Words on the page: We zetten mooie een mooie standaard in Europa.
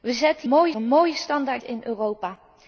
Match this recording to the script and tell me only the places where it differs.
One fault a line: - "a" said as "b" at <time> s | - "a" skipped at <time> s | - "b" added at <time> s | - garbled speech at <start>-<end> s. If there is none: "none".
none